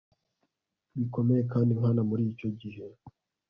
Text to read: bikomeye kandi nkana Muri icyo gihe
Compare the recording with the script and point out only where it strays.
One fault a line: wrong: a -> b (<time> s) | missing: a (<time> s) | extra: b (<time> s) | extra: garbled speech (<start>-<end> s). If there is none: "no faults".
no faults